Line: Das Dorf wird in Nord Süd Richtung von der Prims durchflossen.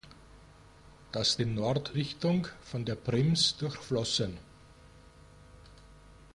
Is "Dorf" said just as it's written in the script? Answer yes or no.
no